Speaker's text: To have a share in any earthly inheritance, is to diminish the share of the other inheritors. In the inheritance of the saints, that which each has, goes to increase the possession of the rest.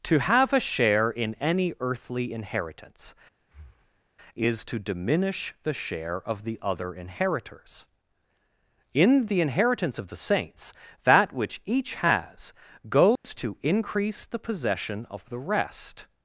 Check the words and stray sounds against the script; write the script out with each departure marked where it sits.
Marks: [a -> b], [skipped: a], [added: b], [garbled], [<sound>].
To have a share in any earthly inheritance, [breath] is to diminish the share of the other inheritors. In the inheritance of the saints, that which each has, goes [dropout] to increase the possession of the rest.